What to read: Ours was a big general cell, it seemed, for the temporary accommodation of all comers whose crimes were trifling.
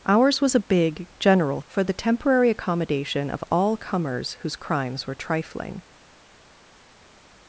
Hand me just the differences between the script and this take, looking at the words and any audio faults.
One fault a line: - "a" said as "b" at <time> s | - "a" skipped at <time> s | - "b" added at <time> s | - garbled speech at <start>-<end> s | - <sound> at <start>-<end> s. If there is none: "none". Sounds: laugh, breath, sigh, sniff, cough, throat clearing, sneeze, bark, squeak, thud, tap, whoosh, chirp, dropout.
- "cell it seemed" skipped at 1.6 s